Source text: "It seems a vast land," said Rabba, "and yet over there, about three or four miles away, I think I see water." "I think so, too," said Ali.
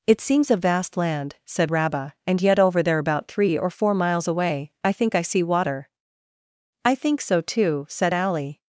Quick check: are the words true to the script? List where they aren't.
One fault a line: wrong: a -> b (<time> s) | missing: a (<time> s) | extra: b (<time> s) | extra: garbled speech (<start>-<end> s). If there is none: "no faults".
no faults